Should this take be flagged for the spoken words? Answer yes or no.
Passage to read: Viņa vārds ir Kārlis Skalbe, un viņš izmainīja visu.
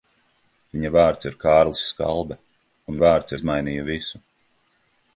yes